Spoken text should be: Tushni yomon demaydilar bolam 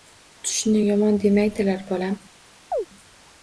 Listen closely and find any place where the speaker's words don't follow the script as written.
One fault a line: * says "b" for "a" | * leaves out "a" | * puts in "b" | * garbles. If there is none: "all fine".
all fine